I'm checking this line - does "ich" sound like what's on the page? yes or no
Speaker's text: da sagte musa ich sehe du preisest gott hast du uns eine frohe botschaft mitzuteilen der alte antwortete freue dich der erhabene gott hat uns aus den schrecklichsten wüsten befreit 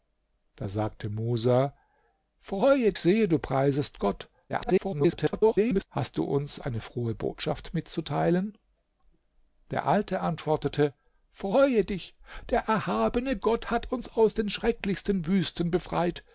no